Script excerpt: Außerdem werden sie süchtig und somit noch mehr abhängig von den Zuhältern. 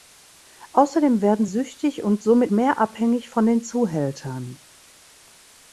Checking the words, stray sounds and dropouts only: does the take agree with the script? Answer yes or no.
no